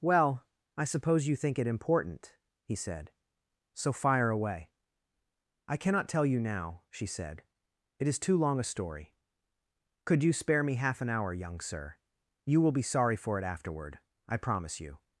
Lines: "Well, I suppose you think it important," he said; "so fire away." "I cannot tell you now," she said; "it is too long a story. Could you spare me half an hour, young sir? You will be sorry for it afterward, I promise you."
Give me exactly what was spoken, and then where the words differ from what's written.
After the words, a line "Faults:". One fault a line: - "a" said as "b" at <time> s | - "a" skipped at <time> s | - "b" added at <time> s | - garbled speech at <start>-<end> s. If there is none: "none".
"Well, I suppose you think it important," he said; "so fire away." "I cannot tell you now," she said; "it is too long a story. Could you spare me half an hour, young sir? You will be sorry for it afterward, I promise you."
Faults:
none